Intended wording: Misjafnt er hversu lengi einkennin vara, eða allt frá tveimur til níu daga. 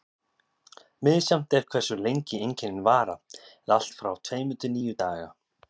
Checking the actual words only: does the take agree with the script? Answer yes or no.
yes